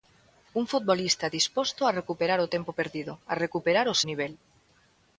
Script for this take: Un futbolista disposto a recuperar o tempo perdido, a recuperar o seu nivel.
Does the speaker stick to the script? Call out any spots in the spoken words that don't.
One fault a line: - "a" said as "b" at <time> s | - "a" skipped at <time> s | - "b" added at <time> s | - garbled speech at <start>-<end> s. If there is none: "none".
- "seu" skipped at 4.0 s